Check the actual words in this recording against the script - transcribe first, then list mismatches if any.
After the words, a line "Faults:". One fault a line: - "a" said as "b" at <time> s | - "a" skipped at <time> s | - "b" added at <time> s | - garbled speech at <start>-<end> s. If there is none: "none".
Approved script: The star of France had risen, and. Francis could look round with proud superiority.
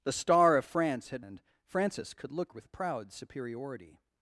The star of France had and. Francis could look with proud superiority.
Faults:
- "risen" skipped at 1.2 s
- "round" skipped at 2.5 s